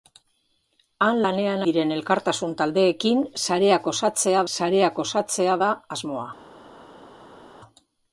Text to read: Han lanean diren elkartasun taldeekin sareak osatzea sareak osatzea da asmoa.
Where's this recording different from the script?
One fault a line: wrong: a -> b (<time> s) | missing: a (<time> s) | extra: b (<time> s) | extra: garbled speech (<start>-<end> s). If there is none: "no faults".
no faults